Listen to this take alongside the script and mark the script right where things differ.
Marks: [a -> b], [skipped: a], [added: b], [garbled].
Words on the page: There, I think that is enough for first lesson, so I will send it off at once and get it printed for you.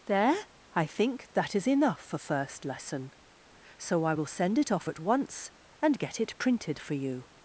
There, I think that is enough for first lesson, so I will send it off at once and get it printed for you.